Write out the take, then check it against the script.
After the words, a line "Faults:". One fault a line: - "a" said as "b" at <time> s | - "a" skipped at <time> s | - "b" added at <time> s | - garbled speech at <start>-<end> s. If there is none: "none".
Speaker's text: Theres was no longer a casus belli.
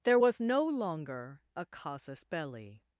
There was no longer a casus belli.
Faults:
- "Theres" said as "There" at 0.0 s